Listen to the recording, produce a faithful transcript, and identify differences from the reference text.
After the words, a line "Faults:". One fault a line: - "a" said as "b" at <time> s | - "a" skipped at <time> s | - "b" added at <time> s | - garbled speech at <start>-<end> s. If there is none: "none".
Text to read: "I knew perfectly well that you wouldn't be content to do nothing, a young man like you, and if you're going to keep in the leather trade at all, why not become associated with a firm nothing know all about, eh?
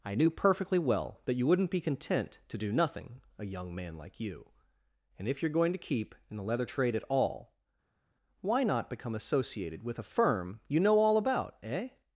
"I knew perfectly well that you wouldn't be content to do nothing, a young man like you, and if you're going to keep in the leather trade at all, why not become associated with a firm you know all about, eh?
Faults:
- "nothing" said as "you" at 10.7 s